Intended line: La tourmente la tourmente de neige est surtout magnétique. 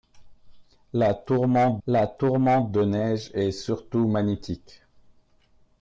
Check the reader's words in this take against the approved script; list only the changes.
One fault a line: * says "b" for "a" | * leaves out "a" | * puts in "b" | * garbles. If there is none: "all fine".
all fine